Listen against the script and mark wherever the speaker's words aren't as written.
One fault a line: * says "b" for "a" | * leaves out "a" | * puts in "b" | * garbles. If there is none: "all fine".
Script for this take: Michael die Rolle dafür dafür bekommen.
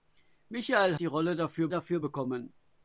all fine